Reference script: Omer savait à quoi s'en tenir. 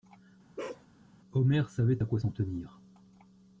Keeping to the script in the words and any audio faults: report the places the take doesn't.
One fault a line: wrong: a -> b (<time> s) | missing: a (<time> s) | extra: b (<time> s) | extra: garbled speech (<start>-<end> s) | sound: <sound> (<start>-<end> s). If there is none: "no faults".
sound: bark (0.6-0.9 s)